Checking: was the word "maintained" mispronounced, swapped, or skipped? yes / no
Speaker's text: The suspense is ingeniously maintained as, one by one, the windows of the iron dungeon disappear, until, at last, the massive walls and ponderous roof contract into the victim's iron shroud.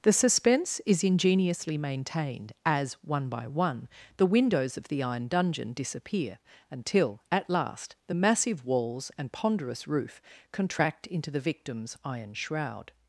no